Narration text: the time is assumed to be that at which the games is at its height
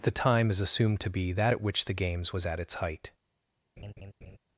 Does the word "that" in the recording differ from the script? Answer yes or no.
no